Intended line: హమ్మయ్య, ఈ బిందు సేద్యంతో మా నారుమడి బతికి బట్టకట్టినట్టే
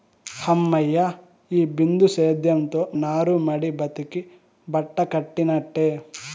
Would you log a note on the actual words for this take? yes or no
yes